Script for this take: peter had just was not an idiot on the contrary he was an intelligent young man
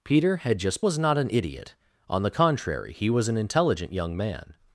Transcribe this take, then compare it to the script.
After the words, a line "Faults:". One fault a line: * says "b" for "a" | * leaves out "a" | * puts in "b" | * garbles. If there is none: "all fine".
peter had just was not an idiot on the contrary he was an intelligent young man
Faults:
all fine